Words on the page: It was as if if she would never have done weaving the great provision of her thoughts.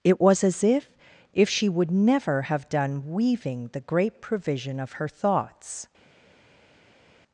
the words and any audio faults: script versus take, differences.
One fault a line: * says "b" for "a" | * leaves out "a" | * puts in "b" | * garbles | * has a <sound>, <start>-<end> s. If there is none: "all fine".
all fine